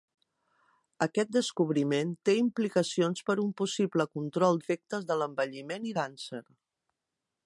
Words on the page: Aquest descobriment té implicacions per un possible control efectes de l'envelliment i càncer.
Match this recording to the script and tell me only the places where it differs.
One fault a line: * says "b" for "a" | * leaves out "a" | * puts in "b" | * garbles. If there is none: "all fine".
all fine